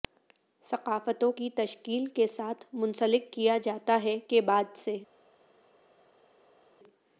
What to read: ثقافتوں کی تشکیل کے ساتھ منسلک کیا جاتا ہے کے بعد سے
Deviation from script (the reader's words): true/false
false